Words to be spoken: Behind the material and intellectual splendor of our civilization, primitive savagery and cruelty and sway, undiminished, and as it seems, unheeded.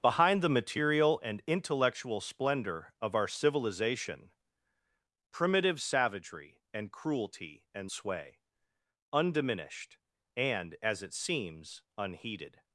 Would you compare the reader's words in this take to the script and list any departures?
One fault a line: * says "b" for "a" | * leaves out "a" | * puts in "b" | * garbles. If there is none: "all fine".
all fine